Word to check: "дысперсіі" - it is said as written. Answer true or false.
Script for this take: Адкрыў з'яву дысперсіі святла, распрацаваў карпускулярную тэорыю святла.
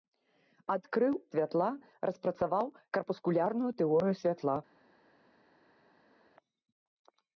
false